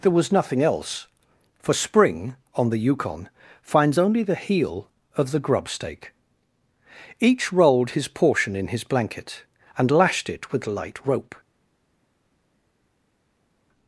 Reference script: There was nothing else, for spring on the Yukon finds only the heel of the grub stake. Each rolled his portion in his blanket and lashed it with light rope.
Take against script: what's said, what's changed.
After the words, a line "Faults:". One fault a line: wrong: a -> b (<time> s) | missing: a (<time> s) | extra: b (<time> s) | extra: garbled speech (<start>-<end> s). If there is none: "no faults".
There was nothing else, for spring on the Yukon finds only the heel of the grub stake. Each rolled his portion in his blanket and lashed it with light rope.
Faults:
no faults